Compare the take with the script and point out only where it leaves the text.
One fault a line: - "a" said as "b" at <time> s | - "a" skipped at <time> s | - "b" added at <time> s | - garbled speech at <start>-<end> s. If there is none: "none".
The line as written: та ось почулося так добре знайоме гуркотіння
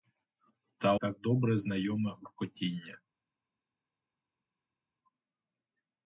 - "ось почулося" skipped at 0.9 s